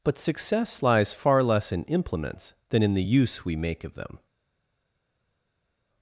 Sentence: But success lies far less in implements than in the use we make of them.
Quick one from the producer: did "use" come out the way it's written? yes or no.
yes